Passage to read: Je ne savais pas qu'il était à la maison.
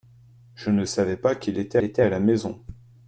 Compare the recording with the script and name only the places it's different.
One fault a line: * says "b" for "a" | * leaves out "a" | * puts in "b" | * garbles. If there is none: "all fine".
* puts in "était"